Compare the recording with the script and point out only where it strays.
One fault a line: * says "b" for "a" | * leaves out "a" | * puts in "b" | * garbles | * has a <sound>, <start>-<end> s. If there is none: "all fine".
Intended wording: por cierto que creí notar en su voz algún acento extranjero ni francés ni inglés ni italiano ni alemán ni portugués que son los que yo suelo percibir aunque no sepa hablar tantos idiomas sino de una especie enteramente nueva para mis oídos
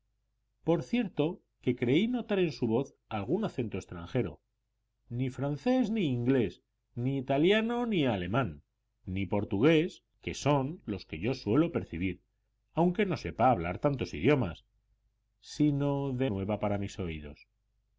* leaves out "una especie enteramente"